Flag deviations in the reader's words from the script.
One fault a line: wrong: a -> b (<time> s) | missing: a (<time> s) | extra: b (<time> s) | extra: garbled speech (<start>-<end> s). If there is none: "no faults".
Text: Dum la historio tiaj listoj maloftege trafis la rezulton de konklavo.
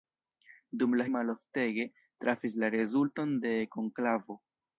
missing: historio tiaj listoj (1.0 s)